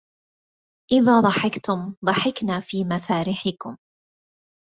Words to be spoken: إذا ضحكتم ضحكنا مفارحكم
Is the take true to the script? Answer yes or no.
no